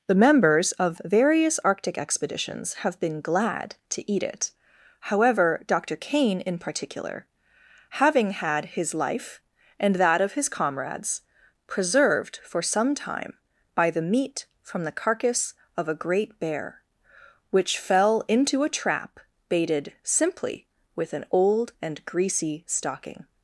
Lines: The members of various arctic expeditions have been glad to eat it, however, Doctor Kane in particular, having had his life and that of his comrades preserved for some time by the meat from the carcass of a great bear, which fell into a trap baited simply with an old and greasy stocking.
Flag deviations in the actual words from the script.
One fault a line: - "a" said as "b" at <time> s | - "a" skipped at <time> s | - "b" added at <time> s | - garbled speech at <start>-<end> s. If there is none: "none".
none